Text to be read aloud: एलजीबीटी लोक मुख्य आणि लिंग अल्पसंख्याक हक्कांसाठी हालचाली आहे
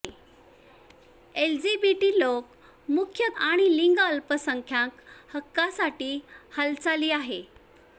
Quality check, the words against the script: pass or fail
pass